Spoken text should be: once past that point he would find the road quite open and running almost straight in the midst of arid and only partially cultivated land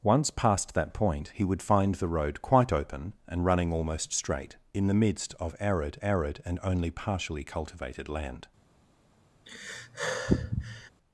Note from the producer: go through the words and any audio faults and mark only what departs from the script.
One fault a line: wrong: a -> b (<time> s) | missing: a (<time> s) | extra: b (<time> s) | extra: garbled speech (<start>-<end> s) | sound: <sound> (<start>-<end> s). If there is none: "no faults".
extra: arid (6.0 s)
sound: sigh (9.5-10.9 s)